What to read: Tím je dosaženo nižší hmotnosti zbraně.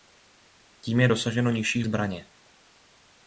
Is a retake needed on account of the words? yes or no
yes